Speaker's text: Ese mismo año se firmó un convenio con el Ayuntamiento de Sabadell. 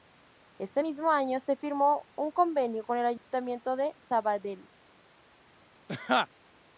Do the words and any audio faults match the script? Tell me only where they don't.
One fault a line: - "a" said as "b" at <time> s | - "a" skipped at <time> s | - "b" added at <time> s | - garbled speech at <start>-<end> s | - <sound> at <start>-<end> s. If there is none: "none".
- dropout at 3.2-3.3 s
- laugh at 5.9-6.3 s